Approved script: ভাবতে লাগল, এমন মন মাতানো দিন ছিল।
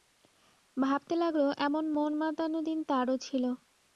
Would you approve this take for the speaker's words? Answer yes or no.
no